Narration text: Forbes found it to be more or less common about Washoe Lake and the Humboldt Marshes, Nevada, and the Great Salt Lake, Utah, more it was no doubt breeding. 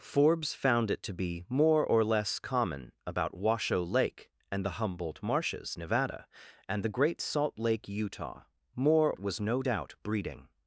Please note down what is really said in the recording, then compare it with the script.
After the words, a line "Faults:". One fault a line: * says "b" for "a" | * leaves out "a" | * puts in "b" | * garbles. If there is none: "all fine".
Forbes found it to be more or less common about Washoe Lake and the Humboldt Marshes, Nevada, and the Great Salt Lake, Utah, more it was no doubt breeding.
Faults:
all fine